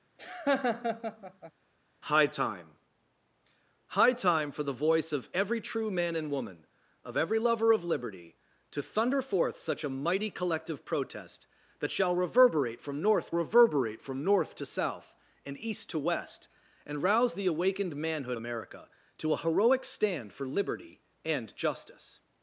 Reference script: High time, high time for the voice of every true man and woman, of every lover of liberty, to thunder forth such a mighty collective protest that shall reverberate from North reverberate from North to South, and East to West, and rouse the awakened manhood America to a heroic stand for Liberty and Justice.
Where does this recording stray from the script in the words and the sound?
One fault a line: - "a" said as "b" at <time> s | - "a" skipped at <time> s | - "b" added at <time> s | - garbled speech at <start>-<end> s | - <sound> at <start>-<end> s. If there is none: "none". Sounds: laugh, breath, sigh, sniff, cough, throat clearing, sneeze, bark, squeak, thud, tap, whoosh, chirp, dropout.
- laugh at 0.2-1.5 s